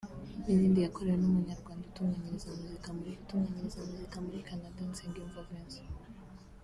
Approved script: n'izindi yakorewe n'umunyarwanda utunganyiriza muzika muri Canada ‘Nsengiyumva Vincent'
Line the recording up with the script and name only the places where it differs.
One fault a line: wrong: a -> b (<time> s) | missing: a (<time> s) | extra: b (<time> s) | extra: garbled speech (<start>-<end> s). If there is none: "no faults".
extra: utunganyiriza muzika muri (3.2 s)